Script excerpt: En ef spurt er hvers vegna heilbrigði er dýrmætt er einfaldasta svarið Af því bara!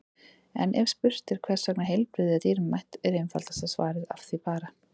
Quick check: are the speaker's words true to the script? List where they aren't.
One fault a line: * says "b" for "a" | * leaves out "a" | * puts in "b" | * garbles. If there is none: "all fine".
all fine